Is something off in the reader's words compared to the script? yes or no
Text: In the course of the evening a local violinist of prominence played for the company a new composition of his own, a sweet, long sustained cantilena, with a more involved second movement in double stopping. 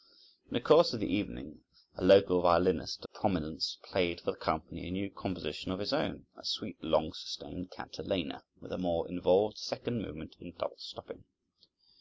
yes